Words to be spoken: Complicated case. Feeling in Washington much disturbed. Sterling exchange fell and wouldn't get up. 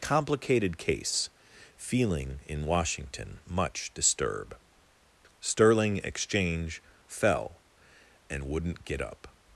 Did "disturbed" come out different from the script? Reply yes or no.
yes